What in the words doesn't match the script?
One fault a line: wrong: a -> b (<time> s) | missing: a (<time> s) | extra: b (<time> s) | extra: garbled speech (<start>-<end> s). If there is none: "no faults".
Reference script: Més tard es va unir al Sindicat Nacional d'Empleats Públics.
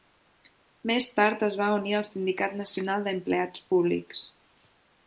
no faults